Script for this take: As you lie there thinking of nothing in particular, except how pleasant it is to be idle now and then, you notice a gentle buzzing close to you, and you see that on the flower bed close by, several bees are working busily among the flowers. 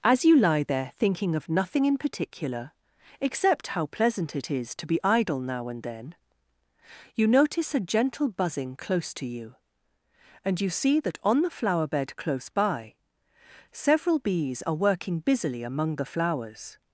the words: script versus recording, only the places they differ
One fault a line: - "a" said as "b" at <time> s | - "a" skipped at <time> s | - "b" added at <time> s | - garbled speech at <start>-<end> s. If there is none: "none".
none